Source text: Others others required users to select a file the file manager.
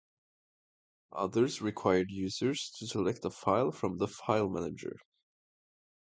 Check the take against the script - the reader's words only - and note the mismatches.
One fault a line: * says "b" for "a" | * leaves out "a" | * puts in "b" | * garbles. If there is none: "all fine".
* leaves out "others"
* puts in "from"